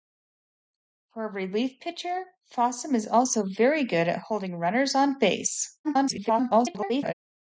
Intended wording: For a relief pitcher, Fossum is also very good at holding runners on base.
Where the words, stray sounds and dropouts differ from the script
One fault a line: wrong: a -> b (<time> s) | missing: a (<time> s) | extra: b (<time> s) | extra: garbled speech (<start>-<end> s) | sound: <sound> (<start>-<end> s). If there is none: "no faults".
extra: garbled speech (5.8-7.1 s)